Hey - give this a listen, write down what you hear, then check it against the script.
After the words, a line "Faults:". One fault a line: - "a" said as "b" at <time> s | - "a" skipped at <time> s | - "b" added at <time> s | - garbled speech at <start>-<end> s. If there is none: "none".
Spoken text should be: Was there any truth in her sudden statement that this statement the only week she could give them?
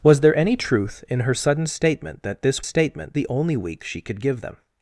Was there any truth in her sudden statement that this statement the only week she could give them?
Faults:
none